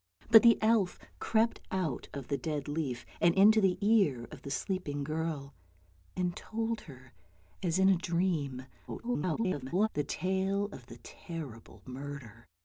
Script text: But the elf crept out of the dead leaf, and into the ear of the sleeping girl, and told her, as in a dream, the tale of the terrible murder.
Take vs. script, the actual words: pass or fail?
fail